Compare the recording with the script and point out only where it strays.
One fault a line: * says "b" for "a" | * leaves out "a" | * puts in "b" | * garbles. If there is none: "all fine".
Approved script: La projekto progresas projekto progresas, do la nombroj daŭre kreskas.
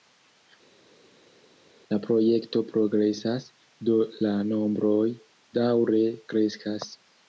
* leaves out "projekto progresas"